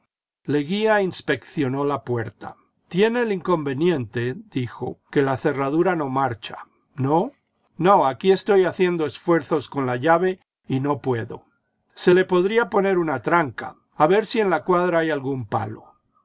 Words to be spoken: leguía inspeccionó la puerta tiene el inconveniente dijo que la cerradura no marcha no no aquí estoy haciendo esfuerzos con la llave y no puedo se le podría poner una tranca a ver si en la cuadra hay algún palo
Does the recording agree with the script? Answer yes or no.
yes